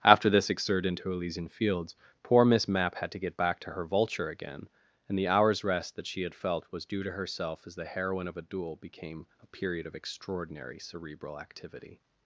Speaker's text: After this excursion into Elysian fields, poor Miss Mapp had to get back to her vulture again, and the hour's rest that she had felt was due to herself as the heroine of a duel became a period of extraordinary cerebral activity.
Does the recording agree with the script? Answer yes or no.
no